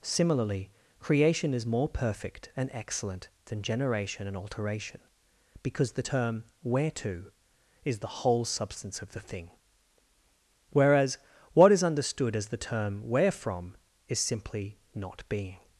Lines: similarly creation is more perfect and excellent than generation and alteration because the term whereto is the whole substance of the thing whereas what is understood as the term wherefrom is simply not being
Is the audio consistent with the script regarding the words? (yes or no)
yes